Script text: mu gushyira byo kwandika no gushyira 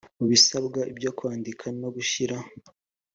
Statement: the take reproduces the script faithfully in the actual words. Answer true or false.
false